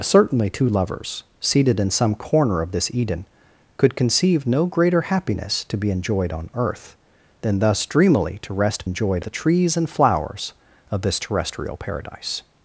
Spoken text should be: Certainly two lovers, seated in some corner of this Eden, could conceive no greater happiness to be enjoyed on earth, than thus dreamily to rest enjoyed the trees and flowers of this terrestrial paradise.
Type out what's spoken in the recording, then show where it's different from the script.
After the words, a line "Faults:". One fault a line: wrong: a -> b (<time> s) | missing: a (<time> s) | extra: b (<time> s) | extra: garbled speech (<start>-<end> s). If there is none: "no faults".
Certainly two lovers, seated in some corner of this Eden, could conceive no greater happiness to be enjoyed on earth, than thus dreamily to rest enjoyed the trees and flowers of this terrestrial paradise.
Faults:
no faults